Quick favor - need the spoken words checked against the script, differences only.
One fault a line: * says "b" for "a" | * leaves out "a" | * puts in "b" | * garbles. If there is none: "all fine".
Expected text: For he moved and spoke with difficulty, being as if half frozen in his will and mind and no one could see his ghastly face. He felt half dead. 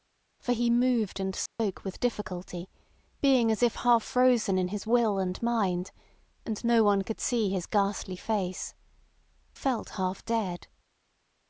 * leaves out "He"